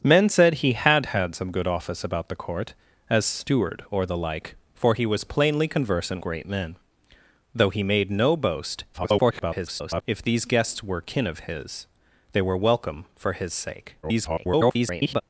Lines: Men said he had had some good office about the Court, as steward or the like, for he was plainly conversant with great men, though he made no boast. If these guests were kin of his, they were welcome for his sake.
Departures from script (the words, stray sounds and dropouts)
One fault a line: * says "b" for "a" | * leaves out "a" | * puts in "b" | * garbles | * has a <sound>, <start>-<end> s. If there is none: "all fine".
* leaves out "with"
* garbles
* garbles